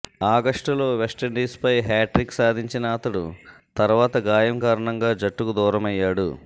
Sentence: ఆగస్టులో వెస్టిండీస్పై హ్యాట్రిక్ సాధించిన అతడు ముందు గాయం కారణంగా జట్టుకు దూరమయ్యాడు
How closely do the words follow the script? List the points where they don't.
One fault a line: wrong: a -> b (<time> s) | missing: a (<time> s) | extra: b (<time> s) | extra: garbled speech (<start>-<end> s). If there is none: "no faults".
wrong: ముందు -> తర్వాత (3.8 s)